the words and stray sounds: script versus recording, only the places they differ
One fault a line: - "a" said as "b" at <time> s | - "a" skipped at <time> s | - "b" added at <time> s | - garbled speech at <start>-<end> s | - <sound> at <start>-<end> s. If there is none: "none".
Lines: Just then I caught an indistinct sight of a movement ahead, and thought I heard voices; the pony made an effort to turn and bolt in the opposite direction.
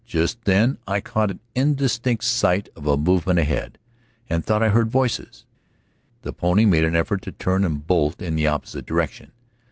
none